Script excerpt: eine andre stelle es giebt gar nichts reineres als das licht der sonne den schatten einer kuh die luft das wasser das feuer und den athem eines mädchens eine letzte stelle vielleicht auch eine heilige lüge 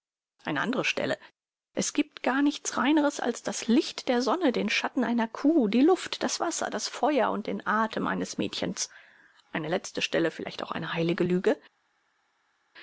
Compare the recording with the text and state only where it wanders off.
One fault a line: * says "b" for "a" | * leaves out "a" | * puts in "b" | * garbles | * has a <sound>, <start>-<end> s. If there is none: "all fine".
all fine